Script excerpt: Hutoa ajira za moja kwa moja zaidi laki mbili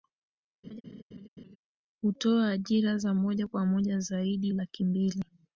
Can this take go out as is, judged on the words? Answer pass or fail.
pass